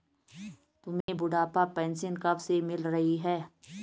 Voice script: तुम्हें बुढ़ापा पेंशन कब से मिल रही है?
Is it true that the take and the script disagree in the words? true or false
false